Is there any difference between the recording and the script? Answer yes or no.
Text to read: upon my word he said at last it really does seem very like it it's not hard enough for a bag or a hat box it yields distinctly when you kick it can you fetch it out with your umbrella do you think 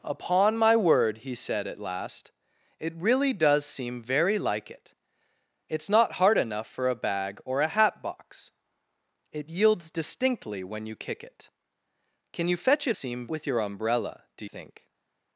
yes